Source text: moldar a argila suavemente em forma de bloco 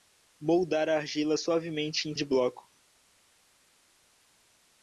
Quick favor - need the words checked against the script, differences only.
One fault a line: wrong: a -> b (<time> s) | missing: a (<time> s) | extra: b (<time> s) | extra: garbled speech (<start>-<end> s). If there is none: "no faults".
missing: forma (2.2 s)